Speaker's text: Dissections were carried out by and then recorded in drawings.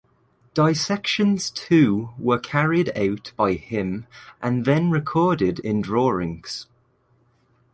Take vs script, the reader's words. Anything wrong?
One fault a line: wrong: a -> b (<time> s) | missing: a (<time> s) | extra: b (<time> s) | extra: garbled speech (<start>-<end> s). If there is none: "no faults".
extra: too (1.5 s)
extra: him (3.5 s)